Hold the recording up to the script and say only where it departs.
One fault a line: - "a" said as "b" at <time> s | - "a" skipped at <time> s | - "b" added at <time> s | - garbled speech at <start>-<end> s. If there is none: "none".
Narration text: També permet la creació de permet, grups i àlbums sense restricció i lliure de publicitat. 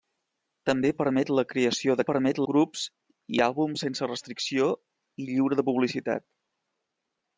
none